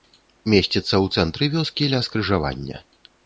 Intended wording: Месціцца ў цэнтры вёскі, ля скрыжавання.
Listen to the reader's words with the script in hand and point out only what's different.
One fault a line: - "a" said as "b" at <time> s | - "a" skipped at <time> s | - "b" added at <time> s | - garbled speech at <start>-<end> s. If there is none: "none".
none